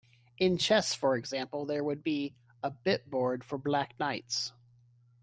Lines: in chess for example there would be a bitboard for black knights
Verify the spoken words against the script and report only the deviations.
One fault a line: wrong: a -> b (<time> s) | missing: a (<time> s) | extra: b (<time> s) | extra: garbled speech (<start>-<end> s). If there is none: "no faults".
no faults